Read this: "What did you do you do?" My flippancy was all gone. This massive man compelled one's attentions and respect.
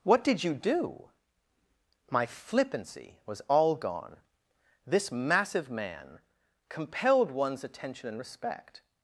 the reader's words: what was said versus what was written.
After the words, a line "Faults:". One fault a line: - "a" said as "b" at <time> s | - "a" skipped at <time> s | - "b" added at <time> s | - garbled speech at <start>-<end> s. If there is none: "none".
"What did you do?" My flippancy was all gone. This massive man compelled one's attention and respect.
Faults:
- "you do" skipped at 1.1 s
- "attentions" said as "attention" at 7.6 s